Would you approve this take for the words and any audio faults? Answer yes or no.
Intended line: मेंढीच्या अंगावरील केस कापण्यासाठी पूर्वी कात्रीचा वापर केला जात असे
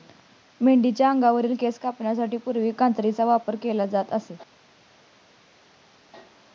yes